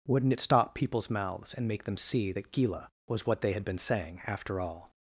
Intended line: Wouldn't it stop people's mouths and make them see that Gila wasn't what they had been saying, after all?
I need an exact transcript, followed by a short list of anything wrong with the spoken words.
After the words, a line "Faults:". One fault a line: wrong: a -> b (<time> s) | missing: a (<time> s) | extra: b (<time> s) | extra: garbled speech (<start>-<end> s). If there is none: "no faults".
Wouldn't it stop people's mouths and make them see that Gila was what they had been saying, after all?
Faults:
wrong: wasn't -> was (3.1 s)